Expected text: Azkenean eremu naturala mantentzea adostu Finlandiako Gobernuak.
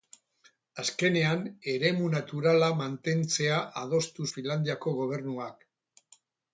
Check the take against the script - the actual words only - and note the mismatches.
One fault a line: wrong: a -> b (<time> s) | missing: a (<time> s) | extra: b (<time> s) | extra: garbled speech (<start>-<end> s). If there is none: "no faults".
no faults